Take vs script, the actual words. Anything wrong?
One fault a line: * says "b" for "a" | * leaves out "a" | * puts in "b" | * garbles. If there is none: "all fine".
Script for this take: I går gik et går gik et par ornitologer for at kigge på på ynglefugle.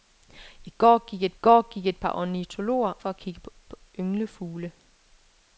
all fine